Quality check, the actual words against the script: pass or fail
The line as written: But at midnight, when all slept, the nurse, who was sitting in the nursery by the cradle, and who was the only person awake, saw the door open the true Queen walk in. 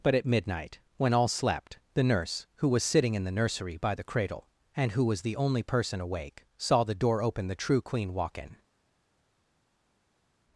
pass